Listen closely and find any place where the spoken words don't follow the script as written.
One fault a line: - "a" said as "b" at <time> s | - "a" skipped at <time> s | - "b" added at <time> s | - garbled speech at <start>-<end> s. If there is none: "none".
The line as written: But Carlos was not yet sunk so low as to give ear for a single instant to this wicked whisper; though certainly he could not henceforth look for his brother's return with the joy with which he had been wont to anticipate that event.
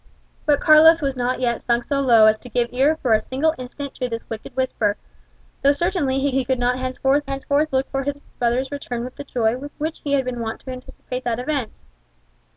- "he" added at 6.3 s
- "henceforth" added at 7.3 s